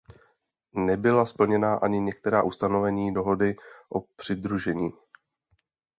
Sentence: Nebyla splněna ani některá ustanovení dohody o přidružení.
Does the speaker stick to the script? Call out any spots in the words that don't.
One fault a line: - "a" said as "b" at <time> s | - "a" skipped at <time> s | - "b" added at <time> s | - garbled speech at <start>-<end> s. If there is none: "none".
none